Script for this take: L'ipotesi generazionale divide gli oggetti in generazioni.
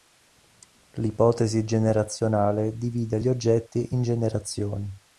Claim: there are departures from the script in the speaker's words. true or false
false